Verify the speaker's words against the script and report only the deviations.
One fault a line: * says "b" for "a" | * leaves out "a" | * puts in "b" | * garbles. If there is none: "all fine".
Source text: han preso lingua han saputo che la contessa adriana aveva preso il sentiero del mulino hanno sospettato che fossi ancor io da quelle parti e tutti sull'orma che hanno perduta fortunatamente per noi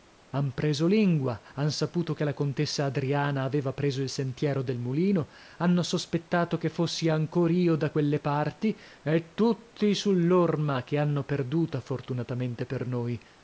all fine